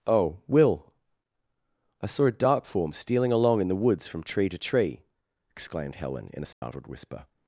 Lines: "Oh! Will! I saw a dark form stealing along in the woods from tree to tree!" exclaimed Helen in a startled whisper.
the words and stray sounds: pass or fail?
fail